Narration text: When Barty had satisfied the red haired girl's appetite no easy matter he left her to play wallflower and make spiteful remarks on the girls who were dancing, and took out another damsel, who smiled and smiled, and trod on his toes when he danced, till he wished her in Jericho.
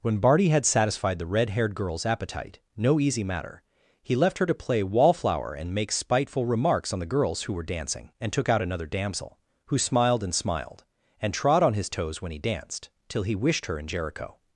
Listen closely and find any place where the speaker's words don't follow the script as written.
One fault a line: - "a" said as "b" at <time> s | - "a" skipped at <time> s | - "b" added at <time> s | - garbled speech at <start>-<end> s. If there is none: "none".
none